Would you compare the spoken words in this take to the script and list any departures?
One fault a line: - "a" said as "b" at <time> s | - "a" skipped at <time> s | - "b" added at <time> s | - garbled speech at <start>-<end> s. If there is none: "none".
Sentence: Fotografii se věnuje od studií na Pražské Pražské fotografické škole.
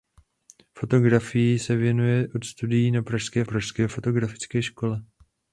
none